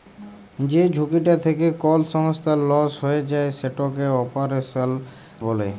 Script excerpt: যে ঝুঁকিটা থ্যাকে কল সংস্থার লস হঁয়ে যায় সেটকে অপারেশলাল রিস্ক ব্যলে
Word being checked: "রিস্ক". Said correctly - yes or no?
no